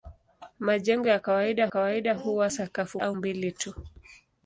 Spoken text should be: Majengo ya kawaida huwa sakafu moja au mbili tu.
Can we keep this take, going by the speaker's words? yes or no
no